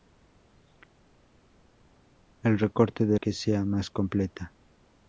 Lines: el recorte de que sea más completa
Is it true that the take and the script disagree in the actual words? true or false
false